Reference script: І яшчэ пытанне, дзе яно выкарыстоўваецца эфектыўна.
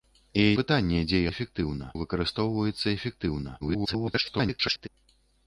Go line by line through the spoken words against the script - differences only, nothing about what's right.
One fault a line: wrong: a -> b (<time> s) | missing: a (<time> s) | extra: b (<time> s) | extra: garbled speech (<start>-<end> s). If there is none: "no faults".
missing: яшчэ (0.5 s)
wrong: яно -> эфектыўна (1.3 s)
extra: garbled speech (3.6-4.9 s)